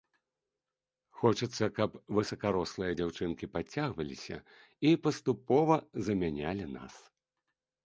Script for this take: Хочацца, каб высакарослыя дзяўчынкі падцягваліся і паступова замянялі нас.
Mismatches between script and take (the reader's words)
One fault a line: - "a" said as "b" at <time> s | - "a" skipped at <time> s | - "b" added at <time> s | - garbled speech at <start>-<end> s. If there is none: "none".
none